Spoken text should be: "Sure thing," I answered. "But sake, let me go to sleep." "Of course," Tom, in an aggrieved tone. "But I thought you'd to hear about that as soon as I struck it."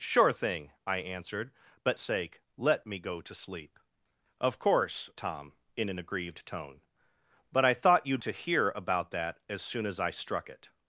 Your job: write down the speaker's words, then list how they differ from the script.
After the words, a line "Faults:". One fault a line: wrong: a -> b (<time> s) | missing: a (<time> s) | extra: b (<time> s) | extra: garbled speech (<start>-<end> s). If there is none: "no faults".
"Sure thing," I answered. "But sake, let me go to sleep." "Of course," Tom, in an aggrieved tone. "But I thought you'd to hear about that as soon as I struck it."
Faults:
no faults